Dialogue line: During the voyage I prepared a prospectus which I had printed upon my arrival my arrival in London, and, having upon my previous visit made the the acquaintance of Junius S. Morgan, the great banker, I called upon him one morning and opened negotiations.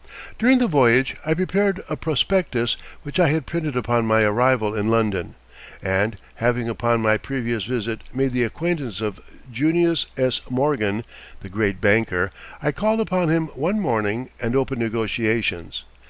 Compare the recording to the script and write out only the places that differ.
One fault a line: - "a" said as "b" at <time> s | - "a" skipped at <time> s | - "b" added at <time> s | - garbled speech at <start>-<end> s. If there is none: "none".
- "my arrival" skipped at 4.7 s
- "the" skipped at 8.4 s